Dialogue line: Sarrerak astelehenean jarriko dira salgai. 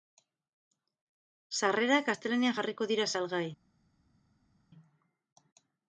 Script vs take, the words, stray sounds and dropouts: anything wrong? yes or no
no